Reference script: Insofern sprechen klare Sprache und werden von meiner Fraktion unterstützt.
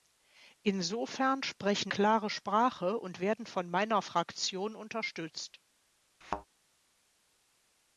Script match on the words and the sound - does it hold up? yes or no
no